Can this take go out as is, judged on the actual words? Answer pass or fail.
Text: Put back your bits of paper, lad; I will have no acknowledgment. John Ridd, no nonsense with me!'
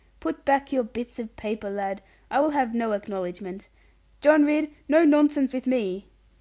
pass